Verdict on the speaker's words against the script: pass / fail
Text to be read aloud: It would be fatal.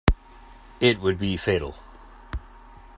pass